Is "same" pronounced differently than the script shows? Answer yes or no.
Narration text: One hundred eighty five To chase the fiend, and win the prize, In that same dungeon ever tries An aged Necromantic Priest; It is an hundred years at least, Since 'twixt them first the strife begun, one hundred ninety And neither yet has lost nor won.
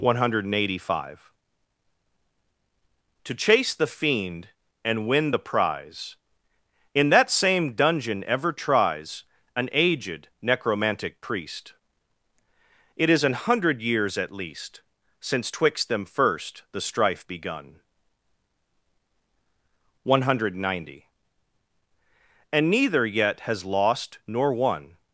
no